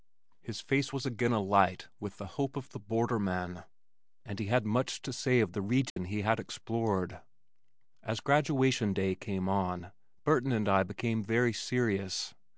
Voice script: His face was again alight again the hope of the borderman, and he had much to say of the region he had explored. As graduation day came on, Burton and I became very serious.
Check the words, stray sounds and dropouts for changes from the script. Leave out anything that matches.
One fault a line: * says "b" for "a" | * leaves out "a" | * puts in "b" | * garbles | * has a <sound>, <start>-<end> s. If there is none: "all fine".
* says "with" for "again"
* has a dropout, 5.9-6.0 s